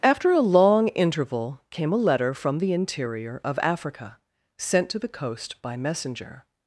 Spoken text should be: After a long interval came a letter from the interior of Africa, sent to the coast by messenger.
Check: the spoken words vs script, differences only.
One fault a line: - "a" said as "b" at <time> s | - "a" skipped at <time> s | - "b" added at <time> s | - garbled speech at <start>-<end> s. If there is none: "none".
none